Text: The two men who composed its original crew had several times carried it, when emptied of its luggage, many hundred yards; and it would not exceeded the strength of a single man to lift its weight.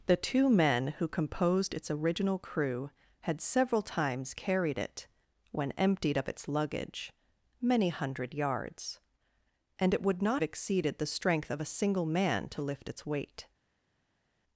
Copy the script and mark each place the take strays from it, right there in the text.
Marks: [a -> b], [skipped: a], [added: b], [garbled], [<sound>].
The two men who composed its original crew had several times carried it, when emptied of its luggage, many hundred yards; and it would not exceeded the strength of a single man to lift its weight.